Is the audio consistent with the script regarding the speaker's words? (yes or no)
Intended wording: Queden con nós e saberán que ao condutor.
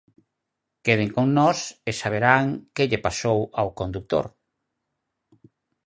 no